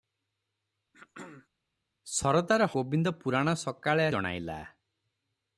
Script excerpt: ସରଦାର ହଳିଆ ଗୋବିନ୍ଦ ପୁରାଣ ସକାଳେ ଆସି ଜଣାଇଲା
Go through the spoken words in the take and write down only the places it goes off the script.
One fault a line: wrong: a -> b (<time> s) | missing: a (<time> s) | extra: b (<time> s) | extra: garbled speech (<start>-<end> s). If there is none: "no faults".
missing: ହଳିଆ (2.7 s)
missing: ଆସି (4.1 s)